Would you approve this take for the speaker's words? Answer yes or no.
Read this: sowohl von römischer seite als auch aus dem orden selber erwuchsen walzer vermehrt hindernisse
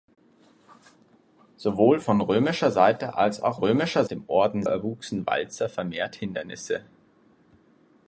no